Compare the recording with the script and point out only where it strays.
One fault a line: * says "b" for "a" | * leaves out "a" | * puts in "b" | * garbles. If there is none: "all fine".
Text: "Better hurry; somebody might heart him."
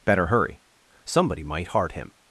all fine